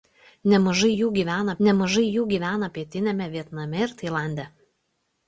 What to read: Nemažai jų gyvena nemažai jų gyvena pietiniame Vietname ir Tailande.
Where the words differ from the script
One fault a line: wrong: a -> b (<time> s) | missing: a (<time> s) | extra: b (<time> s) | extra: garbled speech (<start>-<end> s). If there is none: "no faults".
no faults